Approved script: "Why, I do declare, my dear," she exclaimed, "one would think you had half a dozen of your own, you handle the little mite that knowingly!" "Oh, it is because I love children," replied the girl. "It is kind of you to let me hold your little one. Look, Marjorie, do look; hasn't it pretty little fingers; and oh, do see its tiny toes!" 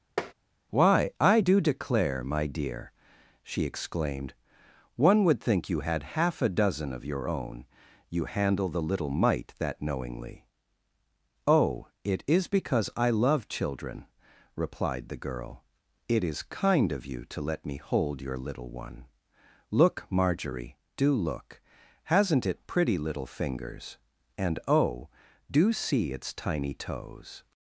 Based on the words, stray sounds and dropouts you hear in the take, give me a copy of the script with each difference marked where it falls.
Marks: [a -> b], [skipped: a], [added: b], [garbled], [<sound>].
[tap] "Why, I do declare, my dear," she exclaimed, "one would think you had half a dozen of your own, you handle the little mite that knowingly!" "Oh, it is because I love children," replied the girl. "It is kind of you to let me hold your little one. Look, Marjorie, do look; hasn't it pretty little fingers; and oh, do see its tiny toes!"